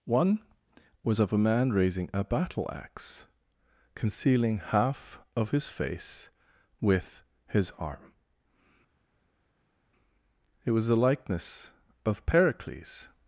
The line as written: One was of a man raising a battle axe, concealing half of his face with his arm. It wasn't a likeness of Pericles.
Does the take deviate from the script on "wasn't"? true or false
true